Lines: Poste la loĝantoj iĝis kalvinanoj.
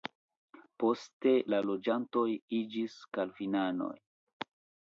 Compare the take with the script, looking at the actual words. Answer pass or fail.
pass